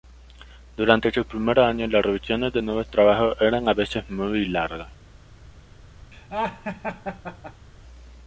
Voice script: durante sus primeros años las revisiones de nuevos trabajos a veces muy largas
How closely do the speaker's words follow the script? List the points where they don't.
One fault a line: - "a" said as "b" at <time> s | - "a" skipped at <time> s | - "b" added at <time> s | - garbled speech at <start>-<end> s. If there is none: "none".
- "eran" added at 3.4 s